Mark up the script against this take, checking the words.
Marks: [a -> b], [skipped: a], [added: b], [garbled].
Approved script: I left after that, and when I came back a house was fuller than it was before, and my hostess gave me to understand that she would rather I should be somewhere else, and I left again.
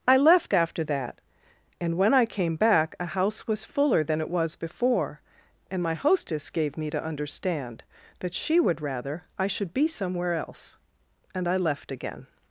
I left after that, and when I came back a house was fuller than it was before, and my hostess gave me to understand that she would rather I should be somewhere else, and I left again.